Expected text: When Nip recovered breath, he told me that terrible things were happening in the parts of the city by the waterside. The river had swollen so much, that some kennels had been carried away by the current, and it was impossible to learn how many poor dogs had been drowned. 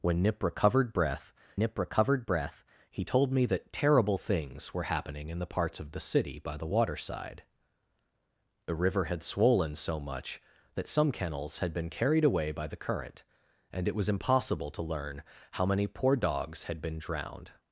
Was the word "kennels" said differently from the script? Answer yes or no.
no